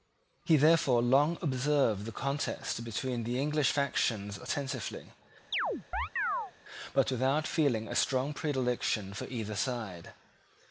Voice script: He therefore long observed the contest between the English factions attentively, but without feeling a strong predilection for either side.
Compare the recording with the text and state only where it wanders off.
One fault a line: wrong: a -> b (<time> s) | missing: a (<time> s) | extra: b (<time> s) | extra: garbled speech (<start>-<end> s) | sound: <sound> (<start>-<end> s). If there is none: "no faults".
sound: chirp (5.5-6.5 s)